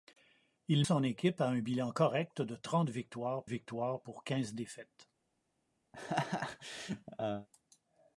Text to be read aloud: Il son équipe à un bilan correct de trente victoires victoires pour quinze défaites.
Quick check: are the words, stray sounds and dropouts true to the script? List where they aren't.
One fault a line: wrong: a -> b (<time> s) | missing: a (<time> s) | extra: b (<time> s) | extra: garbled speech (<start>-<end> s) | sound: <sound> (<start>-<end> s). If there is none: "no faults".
sound: laugh (5.9-7.5 s)